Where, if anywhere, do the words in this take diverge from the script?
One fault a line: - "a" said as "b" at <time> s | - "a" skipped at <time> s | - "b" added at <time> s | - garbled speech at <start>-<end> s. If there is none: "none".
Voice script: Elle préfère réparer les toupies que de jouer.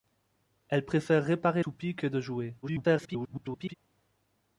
- "les" skipped at 1.6 s
- garbled speech at 2.6-3.7 s